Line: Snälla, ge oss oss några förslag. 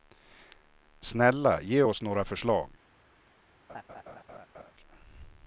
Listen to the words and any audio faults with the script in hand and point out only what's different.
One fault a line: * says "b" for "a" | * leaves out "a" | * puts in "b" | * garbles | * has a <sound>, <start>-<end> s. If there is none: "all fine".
* leaves out "oss"
* has a laugh, 3.7-4.7 s